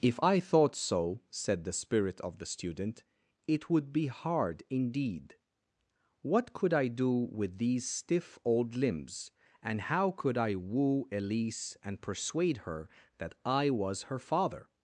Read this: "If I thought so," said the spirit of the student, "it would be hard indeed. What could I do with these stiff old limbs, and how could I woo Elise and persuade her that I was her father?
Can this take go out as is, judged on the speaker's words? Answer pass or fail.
pass